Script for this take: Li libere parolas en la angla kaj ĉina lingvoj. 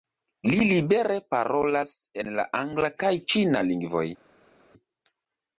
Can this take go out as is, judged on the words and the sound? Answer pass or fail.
pass